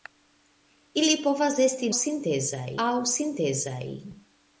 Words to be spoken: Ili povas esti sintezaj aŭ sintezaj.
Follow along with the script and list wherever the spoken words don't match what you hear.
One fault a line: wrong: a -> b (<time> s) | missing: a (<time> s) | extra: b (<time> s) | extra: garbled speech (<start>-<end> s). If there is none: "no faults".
no faults